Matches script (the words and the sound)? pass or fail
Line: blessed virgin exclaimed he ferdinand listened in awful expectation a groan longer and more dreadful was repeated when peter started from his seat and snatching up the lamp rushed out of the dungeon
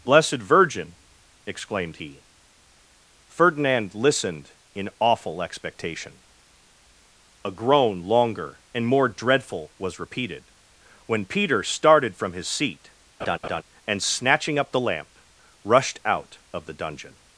fail